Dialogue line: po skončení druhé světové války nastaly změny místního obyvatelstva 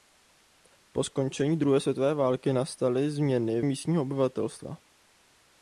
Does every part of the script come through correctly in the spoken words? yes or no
yes